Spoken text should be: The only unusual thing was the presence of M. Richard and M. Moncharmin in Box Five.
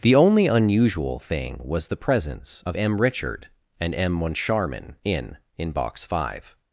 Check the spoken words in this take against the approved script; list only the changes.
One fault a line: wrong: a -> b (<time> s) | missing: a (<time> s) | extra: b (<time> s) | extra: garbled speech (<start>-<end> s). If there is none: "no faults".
extra: in (5.6 s)